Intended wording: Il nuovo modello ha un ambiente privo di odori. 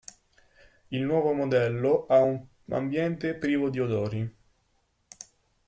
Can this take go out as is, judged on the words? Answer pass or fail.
pass